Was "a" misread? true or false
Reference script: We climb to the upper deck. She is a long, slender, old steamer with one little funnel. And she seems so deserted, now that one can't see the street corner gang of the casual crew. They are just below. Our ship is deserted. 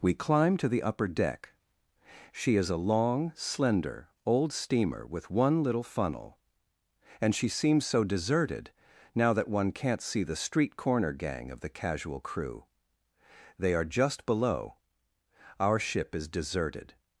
false